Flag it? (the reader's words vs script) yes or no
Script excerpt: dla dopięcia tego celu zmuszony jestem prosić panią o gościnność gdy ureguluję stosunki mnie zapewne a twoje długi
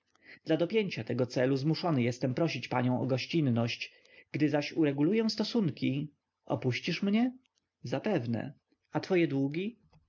yes